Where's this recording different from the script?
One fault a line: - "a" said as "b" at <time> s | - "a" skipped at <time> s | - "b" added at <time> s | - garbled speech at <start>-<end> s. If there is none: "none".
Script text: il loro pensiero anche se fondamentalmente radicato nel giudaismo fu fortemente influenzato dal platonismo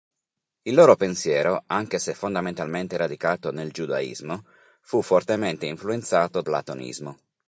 - "dal" skipped at 6.4 s